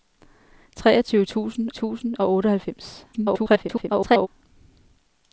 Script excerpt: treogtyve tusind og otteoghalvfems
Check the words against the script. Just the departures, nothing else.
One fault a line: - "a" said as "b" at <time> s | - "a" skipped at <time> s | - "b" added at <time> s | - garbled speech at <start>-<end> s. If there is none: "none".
- "tusind" added at 1.7 s
- garbled speech at 3.1-4.3 s